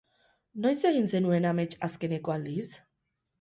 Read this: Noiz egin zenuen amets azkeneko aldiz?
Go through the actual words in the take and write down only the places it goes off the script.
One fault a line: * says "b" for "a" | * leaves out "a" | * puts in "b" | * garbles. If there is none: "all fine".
all fine